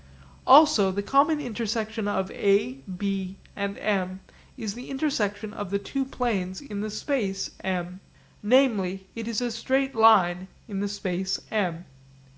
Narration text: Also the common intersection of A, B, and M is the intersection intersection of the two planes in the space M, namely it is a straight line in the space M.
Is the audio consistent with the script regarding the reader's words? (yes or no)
no